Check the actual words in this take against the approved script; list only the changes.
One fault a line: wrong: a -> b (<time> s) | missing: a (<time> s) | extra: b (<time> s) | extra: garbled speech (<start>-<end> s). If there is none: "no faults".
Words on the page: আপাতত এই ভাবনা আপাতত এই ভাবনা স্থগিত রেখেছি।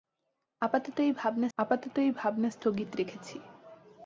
no faults